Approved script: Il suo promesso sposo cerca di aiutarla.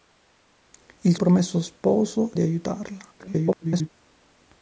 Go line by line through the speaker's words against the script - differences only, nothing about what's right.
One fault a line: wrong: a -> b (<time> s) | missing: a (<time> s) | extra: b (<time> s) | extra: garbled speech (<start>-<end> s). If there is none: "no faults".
missing: suo (1.1 s)
missing: cerca (2.3 s)
extra: garbled speech (3.2-3.9 s)